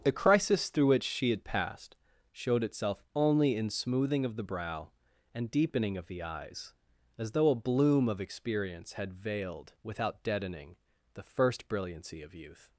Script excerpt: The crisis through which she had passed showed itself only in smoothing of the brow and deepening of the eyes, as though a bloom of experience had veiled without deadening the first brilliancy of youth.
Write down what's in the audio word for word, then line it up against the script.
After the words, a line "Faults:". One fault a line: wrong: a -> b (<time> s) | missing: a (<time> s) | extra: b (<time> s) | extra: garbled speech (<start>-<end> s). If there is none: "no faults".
The crisis through which she had passed showed itself only in smoothing of the brow and deepening of the eyes, as though a bloom of experience had veiled without deadening the first brilliancy of youth.
Faults:
no faults